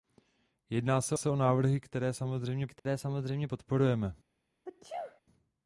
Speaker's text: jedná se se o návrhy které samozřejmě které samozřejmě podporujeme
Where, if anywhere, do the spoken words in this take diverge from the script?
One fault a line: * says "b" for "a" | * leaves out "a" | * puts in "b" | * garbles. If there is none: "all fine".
all fine